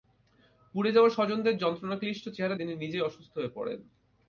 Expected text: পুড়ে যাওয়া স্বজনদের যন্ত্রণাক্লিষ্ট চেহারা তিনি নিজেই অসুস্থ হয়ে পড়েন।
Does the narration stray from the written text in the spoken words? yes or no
no